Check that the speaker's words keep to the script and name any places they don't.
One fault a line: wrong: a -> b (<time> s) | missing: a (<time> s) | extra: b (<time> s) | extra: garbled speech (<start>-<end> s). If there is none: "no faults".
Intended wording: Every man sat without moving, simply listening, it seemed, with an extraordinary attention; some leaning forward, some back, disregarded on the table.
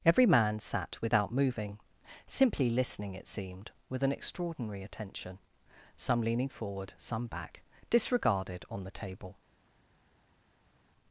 no faults